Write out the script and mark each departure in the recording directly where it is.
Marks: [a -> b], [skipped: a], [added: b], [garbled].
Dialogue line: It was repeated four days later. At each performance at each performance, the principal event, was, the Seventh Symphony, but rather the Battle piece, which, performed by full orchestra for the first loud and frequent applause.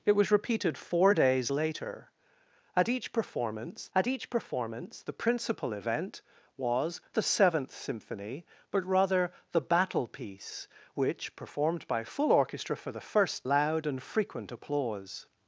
It was repeated four days later. At each performance at each performance, the principal event, was, the Seventh Symphony, but rather the Battle piece, which, performed by full orchestra for the first loud and frequent applause.